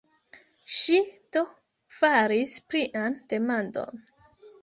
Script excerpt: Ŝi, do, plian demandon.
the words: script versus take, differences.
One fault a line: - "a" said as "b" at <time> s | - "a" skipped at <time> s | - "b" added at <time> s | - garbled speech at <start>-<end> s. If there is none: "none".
- "faris" added at 2.0 s